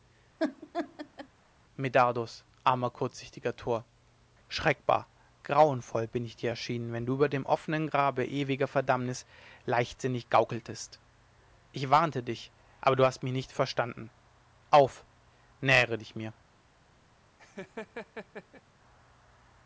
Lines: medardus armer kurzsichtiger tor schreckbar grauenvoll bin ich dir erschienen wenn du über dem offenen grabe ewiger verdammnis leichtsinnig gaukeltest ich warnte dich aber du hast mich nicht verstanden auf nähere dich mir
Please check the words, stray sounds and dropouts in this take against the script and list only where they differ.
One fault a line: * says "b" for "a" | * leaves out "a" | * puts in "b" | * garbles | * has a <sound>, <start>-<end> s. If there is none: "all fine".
* has a laugh, 0.4-1.3 s
* has a laugh, 17.4-18.6 s